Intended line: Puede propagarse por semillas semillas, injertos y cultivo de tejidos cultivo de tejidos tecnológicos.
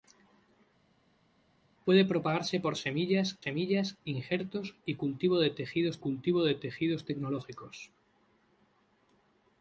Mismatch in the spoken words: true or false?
false